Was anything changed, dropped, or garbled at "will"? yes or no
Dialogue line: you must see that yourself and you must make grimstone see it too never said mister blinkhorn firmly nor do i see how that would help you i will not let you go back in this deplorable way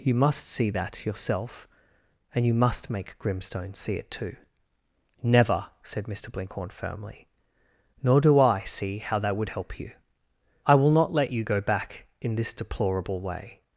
no